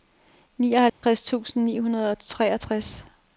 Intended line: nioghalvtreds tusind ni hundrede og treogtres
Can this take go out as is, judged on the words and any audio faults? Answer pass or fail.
fail